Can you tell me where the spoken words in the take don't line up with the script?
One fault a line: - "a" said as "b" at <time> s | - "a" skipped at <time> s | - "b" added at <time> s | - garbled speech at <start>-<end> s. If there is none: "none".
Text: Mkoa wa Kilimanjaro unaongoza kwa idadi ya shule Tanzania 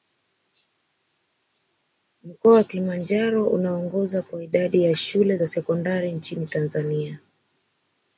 - "za sekondari nchini" added at 5.3 s